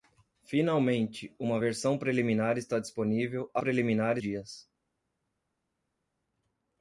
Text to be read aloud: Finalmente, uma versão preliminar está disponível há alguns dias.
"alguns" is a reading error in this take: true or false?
true